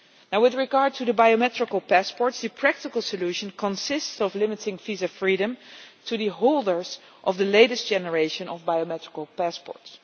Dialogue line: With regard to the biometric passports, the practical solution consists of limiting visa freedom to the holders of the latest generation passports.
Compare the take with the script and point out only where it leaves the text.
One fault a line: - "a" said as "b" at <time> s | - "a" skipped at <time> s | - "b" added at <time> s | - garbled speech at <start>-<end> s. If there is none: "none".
- "of biometric" added at 8.5 s